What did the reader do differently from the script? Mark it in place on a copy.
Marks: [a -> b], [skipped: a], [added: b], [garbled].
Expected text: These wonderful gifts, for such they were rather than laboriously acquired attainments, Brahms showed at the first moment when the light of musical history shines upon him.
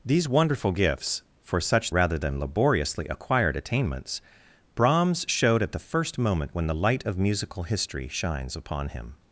These wonderful gifts, for such [skipped: they were] rather than laboriously acquired attainments, Brahms showed at the first moment when the light of musical history shines upon him.